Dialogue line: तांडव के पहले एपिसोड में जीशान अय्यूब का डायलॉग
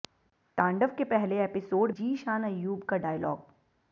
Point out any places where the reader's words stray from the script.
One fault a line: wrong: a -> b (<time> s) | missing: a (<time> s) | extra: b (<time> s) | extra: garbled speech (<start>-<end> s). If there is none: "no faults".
missing: में (1.9 s)